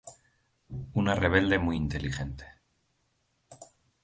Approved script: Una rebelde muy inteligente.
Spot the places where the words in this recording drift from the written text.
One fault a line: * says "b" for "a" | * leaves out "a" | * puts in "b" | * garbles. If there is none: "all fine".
all fine